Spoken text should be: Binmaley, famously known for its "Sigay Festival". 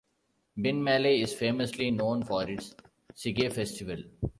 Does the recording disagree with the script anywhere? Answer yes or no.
yes